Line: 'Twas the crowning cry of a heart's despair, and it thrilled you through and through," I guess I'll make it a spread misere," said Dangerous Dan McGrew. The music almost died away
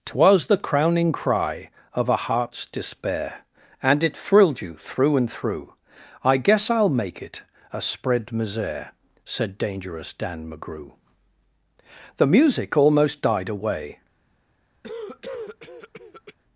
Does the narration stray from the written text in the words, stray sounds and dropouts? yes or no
yes